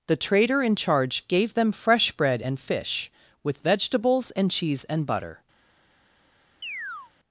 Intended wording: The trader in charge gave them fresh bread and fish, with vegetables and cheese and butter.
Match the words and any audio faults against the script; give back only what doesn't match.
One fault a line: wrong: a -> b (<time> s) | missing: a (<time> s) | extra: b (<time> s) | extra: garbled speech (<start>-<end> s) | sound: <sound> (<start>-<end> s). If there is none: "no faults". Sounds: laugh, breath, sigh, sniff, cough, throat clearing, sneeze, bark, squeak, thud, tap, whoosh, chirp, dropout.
sound: chirp (6.6-7.1 s)